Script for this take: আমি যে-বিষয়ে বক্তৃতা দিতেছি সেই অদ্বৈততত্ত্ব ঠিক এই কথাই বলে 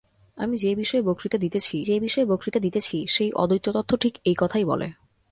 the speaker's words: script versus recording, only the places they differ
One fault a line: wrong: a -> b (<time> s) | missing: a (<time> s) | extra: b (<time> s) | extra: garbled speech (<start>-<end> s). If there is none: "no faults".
extra: যে-বিষয়ে বক্তৃতা দিতেছি (1.8 s)